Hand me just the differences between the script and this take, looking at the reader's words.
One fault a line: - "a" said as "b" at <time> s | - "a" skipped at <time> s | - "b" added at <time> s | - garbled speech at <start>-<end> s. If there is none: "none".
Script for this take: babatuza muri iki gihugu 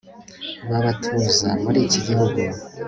none